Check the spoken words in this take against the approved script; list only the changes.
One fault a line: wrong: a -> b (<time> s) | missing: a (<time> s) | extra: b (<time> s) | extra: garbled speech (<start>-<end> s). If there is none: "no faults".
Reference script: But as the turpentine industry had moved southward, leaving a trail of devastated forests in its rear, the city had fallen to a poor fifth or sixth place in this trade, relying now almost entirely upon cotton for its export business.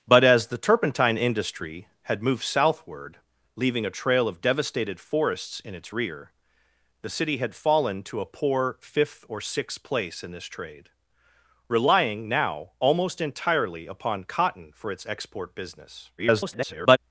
extra: garbled speech (16.2-17.0 s)